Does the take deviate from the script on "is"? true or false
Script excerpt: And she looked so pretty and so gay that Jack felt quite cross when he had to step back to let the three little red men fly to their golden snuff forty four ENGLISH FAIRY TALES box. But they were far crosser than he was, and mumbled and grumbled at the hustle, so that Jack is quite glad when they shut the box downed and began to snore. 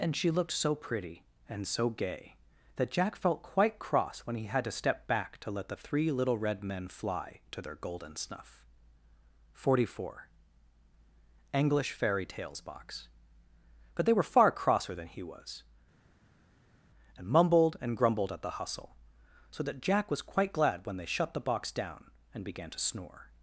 true